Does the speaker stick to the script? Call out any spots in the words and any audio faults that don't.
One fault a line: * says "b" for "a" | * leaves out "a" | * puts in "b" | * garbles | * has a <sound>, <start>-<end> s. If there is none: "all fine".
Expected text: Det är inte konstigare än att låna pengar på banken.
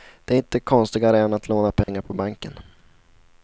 * has a dropout, 1.8-1.9 s